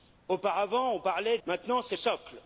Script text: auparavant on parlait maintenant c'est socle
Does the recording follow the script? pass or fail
pass